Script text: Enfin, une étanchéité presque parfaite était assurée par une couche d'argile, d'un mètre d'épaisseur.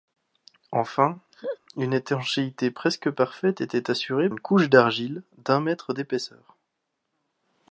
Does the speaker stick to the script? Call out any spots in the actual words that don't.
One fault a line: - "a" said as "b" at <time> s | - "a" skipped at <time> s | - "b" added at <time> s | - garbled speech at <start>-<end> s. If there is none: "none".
- "par" skipped at 4.3 s